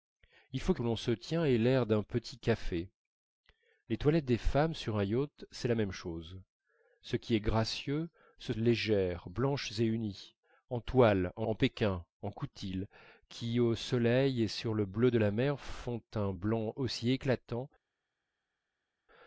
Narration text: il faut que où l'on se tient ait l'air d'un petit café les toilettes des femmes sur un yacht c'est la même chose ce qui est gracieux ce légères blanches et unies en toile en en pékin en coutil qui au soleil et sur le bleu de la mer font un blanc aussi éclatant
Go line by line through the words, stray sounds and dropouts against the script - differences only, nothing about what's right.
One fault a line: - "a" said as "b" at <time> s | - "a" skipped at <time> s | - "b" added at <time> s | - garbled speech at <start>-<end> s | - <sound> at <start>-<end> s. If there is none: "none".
none